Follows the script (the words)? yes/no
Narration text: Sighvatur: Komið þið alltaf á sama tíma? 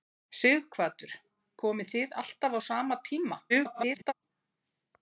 no